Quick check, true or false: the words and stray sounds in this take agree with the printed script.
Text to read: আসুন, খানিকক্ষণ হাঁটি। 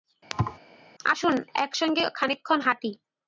false